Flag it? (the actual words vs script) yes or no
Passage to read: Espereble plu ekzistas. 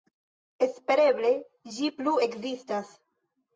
yes